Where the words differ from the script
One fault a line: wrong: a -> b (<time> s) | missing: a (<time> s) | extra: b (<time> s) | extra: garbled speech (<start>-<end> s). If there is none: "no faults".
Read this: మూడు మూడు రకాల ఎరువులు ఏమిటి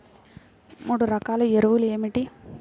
missing: మూడు (1.1 s)